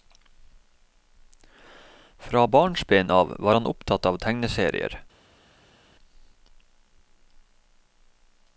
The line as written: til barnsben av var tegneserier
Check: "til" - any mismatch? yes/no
yes